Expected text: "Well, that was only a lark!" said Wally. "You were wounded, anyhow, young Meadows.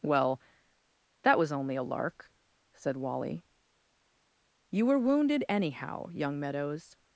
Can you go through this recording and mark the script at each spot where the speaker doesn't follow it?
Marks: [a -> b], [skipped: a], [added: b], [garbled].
"Well, that was only a lark!" said Wally. "You were wounded, anyhow, young Meadows.